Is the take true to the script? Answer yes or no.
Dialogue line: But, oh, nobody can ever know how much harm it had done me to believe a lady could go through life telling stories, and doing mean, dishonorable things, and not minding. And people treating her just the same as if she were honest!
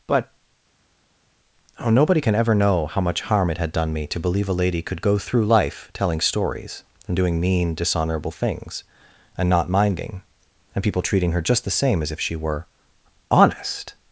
yes